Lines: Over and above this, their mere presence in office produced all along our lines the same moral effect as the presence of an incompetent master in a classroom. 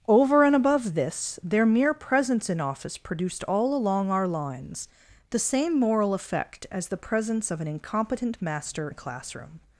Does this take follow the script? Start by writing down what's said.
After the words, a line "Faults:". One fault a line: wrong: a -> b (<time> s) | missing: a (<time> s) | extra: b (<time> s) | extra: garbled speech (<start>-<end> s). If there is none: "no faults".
Over and above this, their mere presence in office produced all along our lines the same moral effect as the presence of an incompetent master a classroom.
Faults:
missing: in (8.9 s)